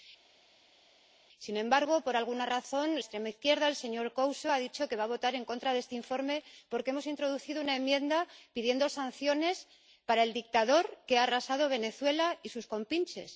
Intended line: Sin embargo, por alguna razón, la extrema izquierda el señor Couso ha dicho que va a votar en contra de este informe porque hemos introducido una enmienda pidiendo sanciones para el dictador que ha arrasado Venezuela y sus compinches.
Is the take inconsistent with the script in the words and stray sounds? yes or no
yes